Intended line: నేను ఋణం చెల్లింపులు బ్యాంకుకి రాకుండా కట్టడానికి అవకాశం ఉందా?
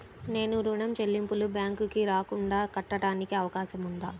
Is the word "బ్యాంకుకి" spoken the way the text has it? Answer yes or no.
yes